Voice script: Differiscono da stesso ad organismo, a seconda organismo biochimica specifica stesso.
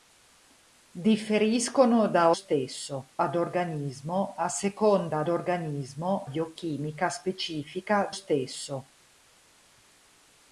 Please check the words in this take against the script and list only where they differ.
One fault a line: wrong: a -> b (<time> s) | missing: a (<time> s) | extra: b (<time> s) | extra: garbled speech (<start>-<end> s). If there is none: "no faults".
no faults